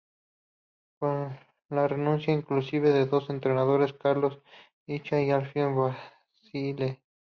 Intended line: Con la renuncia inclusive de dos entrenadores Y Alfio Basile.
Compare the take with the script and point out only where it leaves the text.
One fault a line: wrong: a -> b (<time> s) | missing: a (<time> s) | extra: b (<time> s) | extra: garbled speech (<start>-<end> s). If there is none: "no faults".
extra: Carlos Ischia (3.9 s)